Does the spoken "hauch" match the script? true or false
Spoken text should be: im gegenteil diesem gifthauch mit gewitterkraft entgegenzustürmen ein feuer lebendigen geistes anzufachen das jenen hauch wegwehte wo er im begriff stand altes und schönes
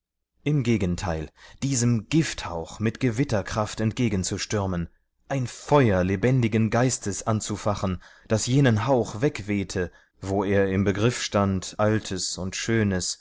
true